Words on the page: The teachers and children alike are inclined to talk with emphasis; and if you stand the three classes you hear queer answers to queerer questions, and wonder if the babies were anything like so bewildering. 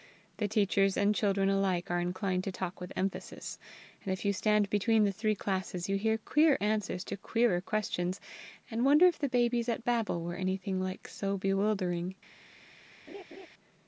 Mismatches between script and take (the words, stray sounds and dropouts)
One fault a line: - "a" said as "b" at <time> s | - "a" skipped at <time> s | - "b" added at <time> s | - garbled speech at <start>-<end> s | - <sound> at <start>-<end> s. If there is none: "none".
- "between" added at 4.7 s
- "at Babel" added at 9.7 s
- laugh at 13.1-13.5 s